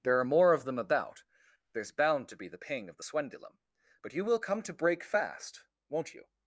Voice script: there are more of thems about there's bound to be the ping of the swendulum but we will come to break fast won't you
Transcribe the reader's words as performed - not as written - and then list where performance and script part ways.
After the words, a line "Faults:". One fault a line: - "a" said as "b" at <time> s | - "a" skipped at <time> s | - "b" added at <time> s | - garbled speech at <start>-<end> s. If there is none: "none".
there are more of them about there's bound to be the ping of the swendulum but you will come to break fast won't you
Faults:
- "thems" said as "them" at 0.7 s
- "we" said as "you" at 4.1 s